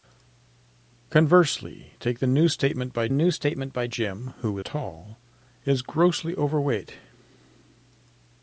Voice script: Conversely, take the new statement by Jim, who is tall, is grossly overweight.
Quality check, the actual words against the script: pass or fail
fail